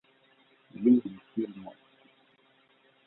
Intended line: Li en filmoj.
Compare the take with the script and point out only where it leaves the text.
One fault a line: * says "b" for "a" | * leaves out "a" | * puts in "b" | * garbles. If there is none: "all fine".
all fine